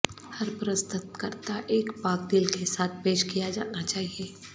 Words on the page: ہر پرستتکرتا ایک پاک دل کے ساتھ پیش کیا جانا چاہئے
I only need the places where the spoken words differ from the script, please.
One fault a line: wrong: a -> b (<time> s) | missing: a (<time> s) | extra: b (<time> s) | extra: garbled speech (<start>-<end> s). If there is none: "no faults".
no faults